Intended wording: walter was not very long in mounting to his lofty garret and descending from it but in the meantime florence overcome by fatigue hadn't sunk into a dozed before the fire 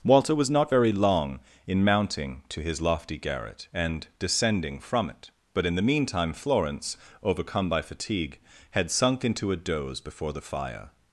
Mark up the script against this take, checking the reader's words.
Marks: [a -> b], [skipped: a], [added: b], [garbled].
walter was not very long in mounting to his lofty garret and descending from it but in the meantime florence overcome by fatigue [hadn't -> had] sunk into a [dozed -> doze] before the fire